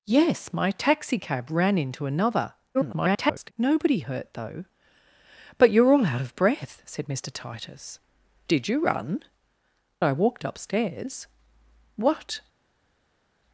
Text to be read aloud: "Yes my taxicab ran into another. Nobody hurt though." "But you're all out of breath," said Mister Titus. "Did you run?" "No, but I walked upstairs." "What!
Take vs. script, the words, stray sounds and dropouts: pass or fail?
fail